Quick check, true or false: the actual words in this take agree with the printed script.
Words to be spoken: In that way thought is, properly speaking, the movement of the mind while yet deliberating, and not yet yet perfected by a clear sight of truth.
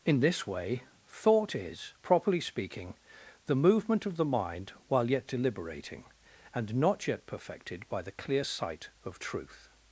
false